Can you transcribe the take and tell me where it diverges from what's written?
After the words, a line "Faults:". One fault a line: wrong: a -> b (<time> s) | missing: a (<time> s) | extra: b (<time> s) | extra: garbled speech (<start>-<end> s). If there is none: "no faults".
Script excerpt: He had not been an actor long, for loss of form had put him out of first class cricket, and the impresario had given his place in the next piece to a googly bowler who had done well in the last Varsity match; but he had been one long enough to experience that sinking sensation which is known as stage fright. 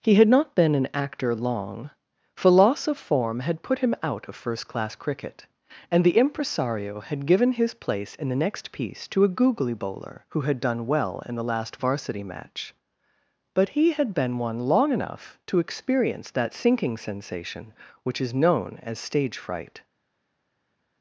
He had not been an actor long, for loss of form had put him out of first class cricket, and the impresario had given his place in the next piece to a googly bowler who had done well in the last Varsity match; but he had been one long enough to experience that sinking sensation which is known as stage fright.
Faults:
no faults